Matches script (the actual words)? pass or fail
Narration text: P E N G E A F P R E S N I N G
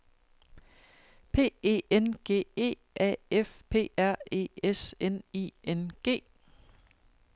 pass